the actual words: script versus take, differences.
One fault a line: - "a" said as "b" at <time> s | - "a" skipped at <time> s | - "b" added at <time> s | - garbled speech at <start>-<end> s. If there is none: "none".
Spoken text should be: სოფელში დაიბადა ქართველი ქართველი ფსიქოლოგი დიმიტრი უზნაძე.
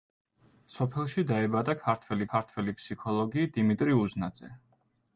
none